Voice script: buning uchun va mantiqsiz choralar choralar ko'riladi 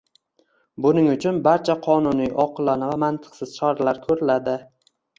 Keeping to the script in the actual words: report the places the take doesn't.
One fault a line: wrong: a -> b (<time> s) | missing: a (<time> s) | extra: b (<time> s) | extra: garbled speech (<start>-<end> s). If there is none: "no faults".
extra: barcha qonuniy oqilona (1.5 s)
missing: choralar (4.1 s)